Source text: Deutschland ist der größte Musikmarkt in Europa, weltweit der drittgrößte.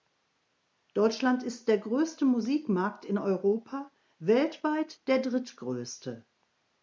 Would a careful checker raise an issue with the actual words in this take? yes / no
no